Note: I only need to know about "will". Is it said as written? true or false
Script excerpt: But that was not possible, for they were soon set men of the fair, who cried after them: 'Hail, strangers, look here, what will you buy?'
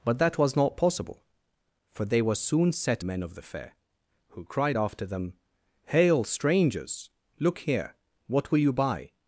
true